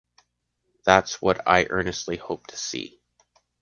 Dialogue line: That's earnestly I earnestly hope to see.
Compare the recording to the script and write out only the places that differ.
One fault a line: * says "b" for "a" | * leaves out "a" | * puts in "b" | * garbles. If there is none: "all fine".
* says "what" for "earnestly"